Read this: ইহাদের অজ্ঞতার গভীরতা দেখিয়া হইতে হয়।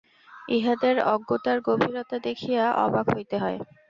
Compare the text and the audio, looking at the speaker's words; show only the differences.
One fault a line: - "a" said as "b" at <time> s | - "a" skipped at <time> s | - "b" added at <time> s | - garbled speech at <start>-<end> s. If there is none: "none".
- "অবাক" added at 2.9 s